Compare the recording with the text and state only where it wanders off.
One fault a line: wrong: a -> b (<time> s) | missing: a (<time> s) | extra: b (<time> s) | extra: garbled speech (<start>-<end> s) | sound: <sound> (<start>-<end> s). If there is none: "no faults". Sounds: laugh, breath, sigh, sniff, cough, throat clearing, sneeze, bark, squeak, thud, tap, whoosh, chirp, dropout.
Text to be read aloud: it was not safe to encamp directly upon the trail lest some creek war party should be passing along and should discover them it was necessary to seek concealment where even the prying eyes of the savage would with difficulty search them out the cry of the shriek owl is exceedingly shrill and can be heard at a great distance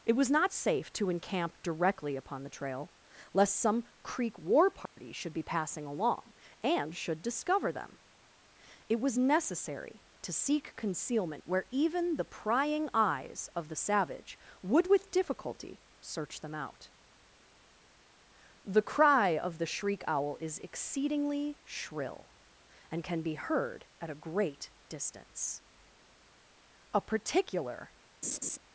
sound: dropout (4.9-5.0 s)
extra: a particular (26.9 s)
sound: laugh (28.2-28.6 s)